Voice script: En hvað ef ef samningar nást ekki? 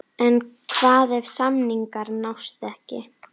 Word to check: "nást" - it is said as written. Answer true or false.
true